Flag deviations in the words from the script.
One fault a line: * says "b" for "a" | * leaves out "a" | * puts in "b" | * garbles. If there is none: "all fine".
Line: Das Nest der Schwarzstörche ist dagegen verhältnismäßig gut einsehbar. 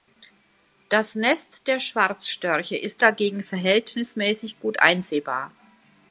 all fine